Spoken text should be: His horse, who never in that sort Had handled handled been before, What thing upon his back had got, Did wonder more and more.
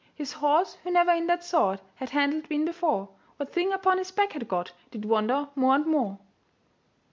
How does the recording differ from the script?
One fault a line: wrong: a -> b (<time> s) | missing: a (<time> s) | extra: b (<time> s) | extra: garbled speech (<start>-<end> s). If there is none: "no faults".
missing: handled (2.5 s)